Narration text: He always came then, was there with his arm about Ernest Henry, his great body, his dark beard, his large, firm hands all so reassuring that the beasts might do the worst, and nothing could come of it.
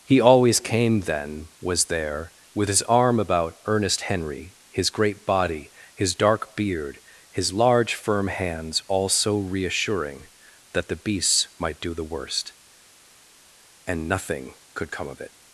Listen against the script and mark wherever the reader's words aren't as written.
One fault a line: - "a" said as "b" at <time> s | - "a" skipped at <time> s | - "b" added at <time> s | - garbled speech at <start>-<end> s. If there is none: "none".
none